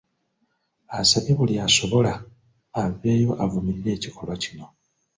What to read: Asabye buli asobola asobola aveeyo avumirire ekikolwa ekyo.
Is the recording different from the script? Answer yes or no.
yes